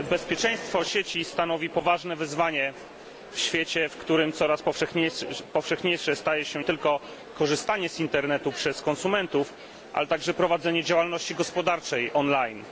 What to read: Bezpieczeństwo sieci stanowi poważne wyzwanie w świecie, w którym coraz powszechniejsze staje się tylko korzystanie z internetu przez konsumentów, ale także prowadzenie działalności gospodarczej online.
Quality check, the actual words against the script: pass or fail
pass